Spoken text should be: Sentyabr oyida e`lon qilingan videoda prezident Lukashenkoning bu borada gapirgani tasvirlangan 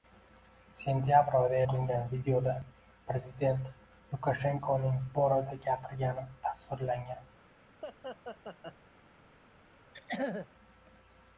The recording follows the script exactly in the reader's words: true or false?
false